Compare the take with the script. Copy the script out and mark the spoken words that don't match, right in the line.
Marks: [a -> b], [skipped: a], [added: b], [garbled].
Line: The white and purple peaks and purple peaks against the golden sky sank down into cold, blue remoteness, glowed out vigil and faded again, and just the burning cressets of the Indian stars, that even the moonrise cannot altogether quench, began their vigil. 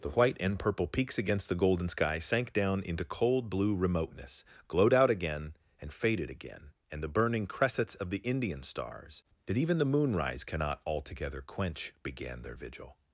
The white and purple peaks [skipped: and purple peaks] against the golden sky sank down into cold, blue remoteness, glowed out [vigil -> again] and faded again, and [skipped: just] the burning cressets of the Indian stars, that even the moonrise cannot altogether quench, began their vigil.